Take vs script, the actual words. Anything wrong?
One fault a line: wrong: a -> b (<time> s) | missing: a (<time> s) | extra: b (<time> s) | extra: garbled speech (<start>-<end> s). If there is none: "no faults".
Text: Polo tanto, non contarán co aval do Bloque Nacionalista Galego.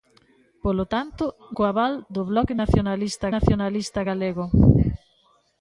missing: non contarán (1.2 s)
extra: Nacionalista (3.4 s)